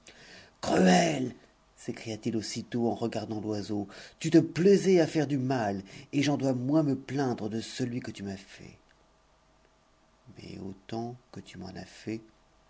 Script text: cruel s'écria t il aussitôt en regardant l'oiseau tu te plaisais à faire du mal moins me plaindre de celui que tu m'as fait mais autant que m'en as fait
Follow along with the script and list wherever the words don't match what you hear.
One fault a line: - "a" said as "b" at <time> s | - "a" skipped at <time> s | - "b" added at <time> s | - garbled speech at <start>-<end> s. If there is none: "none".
- "et j'en dois" added at 6.1 s
- "tu" added at 11.4 s